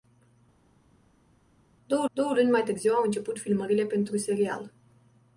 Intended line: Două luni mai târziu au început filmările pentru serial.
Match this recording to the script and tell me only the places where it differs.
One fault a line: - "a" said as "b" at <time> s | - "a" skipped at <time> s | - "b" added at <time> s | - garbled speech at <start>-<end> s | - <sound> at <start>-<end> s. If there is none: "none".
- "două" added at 2.1 s